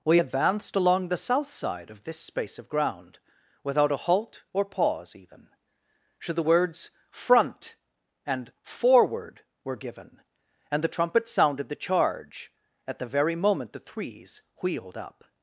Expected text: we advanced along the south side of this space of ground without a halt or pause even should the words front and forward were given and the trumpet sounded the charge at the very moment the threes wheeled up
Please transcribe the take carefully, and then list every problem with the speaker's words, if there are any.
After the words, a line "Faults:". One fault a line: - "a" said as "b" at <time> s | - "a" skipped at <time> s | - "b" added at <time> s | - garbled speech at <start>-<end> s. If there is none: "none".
we advanced along the south side of this space of ground without a halt or pause even should the words front and forward were given and the trumpet sounded the charge at the very moment the threes wheeled up
Faults:
none